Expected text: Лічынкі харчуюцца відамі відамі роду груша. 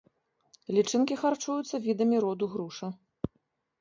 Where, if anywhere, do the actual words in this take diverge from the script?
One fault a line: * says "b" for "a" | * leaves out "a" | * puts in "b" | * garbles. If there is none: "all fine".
* leaves out "відамі"